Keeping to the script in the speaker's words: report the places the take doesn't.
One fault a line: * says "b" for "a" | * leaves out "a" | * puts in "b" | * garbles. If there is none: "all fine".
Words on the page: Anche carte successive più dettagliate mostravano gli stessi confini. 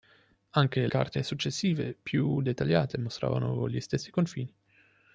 all fine